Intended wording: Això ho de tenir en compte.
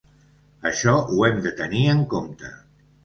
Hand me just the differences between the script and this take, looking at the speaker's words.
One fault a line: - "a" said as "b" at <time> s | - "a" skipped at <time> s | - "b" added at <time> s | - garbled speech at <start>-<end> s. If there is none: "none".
- "hem" added at 1.3 s